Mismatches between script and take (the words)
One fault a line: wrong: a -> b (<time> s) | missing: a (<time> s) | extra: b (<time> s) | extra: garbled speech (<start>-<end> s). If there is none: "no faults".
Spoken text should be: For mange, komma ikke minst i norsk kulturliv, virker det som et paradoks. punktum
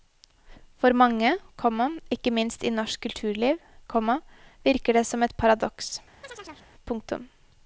extra: komma (3.9 s)